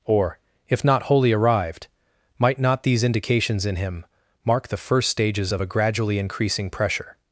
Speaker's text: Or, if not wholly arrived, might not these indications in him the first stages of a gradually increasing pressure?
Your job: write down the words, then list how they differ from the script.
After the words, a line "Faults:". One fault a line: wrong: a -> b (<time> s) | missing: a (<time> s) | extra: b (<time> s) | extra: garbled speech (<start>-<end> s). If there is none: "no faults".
Or, if not wholly arrived, might not these indications in him mark the first stages of a gradually increasing pressure?
Faults:
extra: mark (4.4 s)